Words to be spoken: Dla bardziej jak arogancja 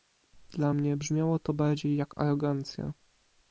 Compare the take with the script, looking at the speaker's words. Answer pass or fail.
fail